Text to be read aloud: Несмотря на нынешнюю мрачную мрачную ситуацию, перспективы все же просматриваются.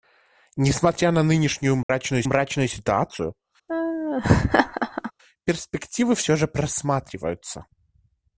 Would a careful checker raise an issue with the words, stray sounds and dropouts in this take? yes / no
yes